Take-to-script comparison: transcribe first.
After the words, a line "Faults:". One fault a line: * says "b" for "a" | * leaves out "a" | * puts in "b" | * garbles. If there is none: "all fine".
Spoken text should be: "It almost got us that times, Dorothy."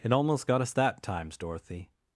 "It almost got us that times, Dorothy."
Faults:
all fine